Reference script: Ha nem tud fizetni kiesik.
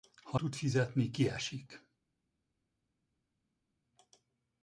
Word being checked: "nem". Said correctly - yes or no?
no